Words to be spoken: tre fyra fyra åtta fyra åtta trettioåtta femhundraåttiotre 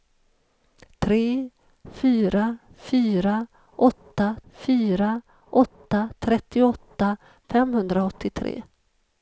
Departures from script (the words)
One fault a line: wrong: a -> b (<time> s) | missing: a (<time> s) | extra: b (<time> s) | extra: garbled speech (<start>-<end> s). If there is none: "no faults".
no faults